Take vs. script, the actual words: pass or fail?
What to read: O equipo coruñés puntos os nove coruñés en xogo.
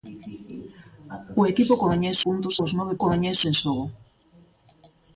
pass